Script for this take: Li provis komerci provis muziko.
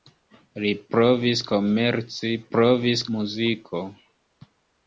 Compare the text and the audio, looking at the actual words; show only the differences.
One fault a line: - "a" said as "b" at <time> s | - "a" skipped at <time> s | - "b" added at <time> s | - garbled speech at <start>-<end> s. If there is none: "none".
none